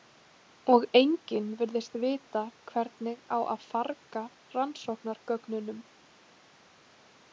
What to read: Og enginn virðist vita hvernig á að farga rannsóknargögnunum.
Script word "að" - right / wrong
right